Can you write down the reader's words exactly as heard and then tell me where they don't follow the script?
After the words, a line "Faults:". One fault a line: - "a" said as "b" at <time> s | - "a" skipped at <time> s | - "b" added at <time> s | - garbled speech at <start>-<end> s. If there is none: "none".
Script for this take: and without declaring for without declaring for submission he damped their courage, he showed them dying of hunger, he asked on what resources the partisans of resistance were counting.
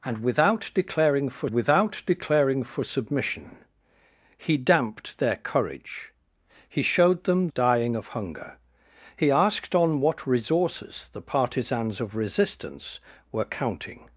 and without declaring for without declaring for submission he damped their courage, he showed them dying of hunger, he asked on what resources the partisans of resistance were counting.
Faults:
none